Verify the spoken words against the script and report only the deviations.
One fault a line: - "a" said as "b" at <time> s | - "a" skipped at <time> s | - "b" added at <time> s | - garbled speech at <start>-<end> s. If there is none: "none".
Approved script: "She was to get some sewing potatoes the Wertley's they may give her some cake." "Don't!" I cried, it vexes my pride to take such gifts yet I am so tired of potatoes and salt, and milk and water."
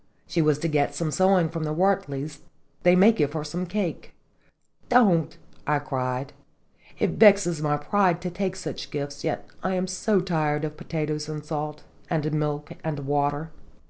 - "potatoes" said as "from" at 1.5 s